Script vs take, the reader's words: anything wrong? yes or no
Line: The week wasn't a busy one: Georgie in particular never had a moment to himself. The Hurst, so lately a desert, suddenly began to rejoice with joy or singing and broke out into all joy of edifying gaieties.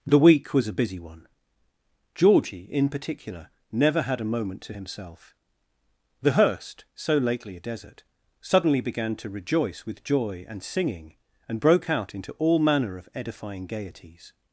yes